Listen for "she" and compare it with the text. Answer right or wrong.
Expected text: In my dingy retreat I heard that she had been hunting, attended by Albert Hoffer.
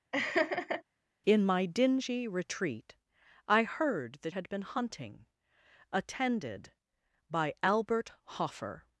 wrong